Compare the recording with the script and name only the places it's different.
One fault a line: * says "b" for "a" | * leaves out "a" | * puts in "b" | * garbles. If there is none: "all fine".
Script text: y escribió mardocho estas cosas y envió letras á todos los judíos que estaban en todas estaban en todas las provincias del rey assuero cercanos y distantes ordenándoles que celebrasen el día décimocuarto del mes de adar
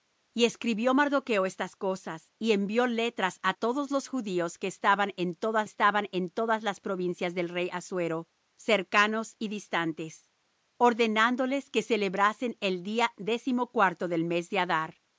all fine